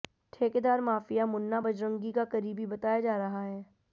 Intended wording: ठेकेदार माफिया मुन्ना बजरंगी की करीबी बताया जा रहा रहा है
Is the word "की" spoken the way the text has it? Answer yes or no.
no